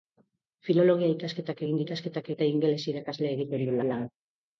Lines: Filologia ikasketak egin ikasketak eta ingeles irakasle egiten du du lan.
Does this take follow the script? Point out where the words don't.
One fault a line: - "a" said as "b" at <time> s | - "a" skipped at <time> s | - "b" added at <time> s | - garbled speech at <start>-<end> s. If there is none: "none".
none